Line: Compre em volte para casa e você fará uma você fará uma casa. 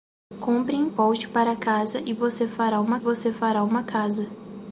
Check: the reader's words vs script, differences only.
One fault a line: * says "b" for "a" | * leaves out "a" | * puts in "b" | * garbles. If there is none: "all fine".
all fine